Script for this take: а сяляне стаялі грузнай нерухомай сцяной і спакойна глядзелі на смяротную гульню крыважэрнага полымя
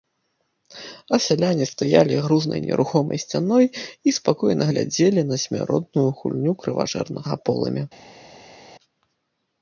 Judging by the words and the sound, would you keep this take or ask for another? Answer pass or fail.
pass